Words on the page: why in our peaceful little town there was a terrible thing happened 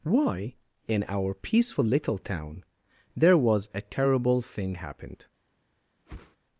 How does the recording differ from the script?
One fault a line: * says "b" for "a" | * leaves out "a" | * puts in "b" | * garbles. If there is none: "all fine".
all fine